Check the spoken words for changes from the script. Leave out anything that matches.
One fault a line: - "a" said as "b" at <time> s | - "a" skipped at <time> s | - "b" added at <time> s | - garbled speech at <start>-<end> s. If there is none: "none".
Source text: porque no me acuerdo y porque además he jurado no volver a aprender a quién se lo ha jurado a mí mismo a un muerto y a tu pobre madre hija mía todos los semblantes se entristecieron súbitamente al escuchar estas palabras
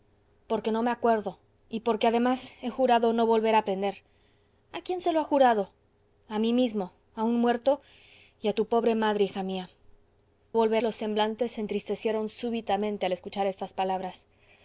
- "todos" said as "volver" at 10.5 s